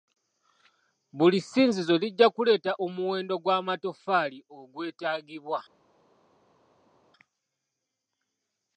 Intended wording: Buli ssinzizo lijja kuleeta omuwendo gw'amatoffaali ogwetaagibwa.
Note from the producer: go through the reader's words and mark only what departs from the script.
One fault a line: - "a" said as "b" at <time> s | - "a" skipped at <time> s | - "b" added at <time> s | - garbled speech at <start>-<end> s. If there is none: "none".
none